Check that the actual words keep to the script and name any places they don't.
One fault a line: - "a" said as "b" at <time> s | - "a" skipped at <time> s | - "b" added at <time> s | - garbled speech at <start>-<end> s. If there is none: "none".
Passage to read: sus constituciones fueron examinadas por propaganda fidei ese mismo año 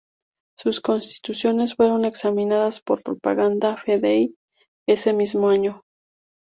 none